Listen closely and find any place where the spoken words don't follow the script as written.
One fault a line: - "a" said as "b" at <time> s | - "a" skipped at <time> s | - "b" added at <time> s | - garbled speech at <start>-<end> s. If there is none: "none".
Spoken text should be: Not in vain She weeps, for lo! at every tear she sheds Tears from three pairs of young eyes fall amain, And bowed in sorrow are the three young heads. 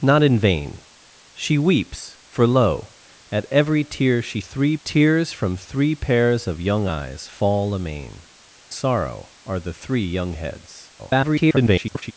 - "sheds" said as "three" at 4.4 s
- "And bowed in" skipped at 8.3 s
- garbled speech at 11.0-12.1 s